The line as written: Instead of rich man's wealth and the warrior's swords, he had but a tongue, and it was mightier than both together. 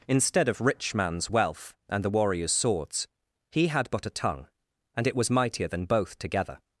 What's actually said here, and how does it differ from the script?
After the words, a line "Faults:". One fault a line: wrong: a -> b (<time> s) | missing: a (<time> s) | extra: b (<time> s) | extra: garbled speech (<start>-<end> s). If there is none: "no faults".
Instead of rich man's wealth and the warrior's swords, he had but a tongue, and it was mightier than both together.
Faults:
no faults